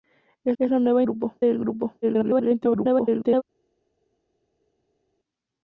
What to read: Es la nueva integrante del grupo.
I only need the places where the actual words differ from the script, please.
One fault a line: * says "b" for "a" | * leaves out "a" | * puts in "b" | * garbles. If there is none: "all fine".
* puts in "es"
* says "grupo" for "integrante"
* garbles